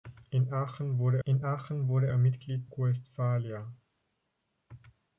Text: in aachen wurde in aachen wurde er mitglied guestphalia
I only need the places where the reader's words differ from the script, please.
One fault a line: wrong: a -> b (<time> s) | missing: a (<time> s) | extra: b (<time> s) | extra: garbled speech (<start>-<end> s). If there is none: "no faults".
no faults